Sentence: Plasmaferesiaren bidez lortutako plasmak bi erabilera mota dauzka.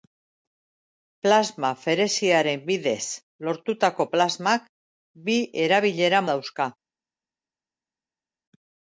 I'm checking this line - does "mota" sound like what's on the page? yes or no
no